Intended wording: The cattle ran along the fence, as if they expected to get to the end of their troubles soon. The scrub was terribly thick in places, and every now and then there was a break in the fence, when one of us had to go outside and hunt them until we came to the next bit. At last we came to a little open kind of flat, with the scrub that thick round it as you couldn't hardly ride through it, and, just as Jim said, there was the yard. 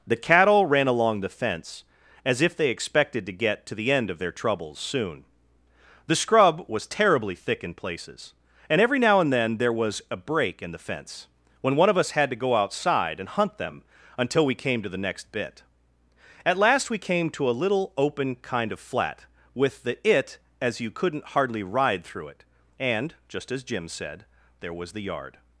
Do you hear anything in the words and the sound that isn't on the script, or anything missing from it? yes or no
yes